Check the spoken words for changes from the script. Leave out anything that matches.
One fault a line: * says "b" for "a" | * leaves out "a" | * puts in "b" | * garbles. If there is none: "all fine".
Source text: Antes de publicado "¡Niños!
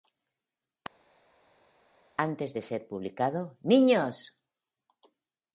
* puts in "ser"